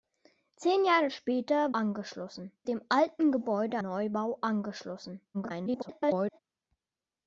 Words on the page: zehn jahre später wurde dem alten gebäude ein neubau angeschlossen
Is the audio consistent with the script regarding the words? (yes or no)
no